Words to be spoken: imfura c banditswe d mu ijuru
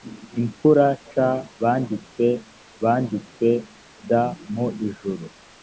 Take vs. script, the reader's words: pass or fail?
fail